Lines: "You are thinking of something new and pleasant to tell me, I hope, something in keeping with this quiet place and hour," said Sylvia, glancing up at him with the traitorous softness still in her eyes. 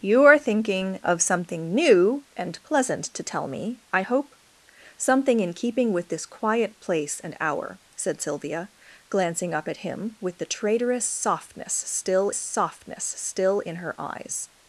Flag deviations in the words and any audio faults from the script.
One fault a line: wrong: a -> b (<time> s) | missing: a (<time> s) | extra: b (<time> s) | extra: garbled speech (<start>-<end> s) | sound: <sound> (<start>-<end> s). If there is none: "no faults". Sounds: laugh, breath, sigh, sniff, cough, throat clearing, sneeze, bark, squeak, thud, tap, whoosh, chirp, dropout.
extra: softness still (12.3 s)